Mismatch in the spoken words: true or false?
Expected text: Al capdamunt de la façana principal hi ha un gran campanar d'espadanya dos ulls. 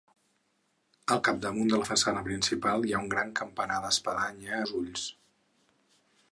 false